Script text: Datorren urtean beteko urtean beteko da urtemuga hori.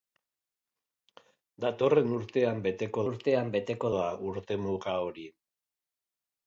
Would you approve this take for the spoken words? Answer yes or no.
yes